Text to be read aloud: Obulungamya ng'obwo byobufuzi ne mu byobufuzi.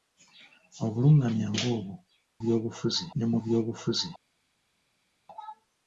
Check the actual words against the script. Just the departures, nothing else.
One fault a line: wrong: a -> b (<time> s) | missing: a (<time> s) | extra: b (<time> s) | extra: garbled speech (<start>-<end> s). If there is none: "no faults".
no faults